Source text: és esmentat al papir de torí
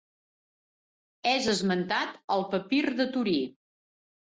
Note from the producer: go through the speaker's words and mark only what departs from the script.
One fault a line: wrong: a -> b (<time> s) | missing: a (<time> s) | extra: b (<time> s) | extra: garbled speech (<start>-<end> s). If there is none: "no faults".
no faults